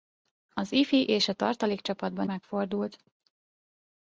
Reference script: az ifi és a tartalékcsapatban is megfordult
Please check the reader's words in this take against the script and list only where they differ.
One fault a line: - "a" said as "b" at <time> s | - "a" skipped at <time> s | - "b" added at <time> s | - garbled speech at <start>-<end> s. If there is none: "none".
- "is" skipped at 2.3 s